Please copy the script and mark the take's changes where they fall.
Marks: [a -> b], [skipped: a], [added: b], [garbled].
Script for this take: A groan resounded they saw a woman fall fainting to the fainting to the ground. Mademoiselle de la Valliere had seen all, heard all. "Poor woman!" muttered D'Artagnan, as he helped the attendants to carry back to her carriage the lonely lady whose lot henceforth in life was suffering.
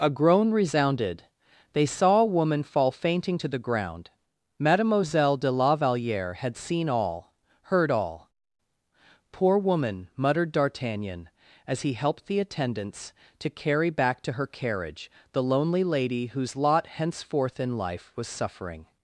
A groan resounded they saw a woman fall fainting to the [skipped: fainting to the] ground. Mademoiselle de la Valliere had seen all, heard all. "Poor woman!" muttered D'Artagnan, as he helped the attendants to carry back to her carriage the lonely lady whose lot henceforth in life was suffering.